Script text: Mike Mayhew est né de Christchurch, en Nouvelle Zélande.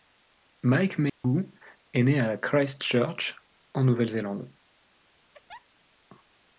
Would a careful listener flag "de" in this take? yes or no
yes